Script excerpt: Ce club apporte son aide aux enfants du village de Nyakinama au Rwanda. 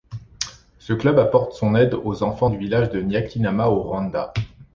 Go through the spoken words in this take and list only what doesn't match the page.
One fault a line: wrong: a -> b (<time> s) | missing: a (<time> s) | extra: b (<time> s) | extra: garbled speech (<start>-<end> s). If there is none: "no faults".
no faults